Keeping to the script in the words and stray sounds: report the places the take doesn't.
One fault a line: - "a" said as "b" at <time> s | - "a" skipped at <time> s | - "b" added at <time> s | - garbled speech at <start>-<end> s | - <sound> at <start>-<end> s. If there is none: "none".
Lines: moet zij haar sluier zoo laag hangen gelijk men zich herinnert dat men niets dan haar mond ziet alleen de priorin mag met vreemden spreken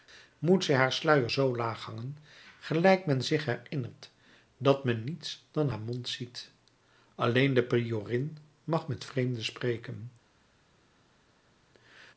none